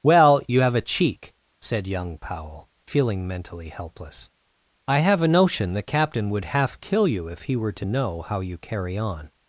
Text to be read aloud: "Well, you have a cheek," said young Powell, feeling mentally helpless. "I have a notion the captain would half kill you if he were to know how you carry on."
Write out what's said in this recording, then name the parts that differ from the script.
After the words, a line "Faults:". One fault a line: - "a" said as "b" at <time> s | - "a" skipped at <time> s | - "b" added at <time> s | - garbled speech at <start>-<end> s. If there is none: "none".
"Well, you have a cheek," said young Powell, feeling mentally helpless. "I have a notion the captain would half kill you if he were to know how you carry on."
Faults:
none